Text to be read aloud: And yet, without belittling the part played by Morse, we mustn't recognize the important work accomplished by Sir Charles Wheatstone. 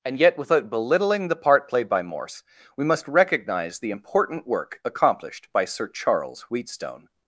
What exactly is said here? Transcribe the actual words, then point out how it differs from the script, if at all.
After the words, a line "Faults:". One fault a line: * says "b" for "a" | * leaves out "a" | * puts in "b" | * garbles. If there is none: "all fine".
And yet, without belittling the part played by Morse, we must recognize the important work accomplished by Sir Charles Wheatstone.
Faults:
* says "must" for "mustn't"